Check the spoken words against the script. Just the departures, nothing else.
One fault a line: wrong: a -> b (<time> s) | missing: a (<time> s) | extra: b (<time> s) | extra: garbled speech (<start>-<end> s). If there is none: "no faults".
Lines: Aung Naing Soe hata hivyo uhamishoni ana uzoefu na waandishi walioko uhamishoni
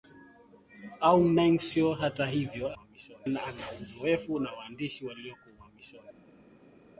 no faults